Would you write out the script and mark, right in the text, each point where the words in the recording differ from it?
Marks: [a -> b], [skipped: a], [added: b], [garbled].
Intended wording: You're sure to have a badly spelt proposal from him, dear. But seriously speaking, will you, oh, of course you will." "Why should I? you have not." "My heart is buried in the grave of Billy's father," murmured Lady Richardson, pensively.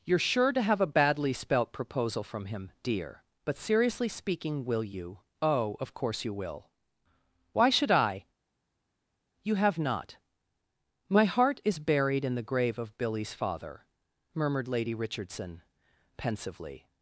You're sure to have a badly spelt proposal from him, dear. But seriously speaking, will you, oh, of course you will." "Why should I? you have not." "My heart is buried in the grave of Billy's father," murmured Lady Richardson, pensively.